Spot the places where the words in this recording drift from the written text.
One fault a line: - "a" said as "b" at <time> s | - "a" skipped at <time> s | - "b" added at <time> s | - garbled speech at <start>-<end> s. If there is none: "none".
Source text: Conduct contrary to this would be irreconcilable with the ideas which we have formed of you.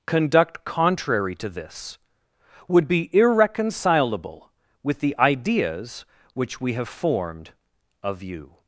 none